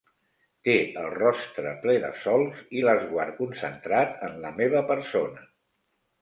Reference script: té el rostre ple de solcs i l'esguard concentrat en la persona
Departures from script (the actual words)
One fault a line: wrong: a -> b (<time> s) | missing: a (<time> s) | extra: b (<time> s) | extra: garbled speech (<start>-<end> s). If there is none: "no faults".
extra: meva (4.6 s)